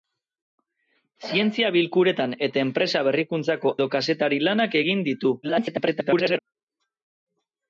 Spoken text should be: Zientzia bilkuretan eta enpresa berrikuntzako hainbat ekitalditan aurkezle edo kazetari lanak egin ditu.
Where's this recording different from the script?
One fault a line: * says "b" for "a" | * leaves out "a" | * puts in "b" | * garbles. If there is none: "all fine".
* leaves out "hainbat ekitalditan aurkezle"
* garbles